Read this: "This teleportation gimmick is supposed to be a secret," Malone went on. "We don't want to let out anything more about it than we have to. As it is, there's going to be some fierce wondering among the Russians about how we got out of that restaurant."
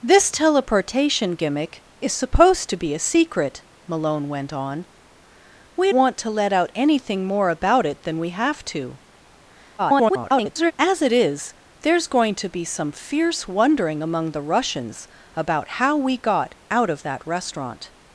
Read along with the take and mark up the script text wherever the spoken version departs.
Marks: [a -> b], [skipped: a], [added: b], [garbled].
"This teleportation gimmick is supposed to be a secret," Malone went on. "We [skipped: don't] want to let out anything more about it than we have to. [garbled] As it is, there's going to be some fierce wondering among the Russians about how we got out of that restaurant."